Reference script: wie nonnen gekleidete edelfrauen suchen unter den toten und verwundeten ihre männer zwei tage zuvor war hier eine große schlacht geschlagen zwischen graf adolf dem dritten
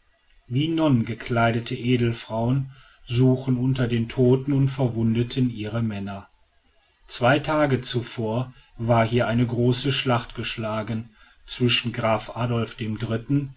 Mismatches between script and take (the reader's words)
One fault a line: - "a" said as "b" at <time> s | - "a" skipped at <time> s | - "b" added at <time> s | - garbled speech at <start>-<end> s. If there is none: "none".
none